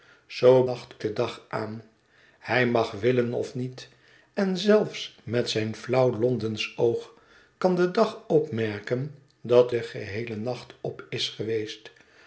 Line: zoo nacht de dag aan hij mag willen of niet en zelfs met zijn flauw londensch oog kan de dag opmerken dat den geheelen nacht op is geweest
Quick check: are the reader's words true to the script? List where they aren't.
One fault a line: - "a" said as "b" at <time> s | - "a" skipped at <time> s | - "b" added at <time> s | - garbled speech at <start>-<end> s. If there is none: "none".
none